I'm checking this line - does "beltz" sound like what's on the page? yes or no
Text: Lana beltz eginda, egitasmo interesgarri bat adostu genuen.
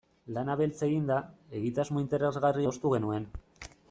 yes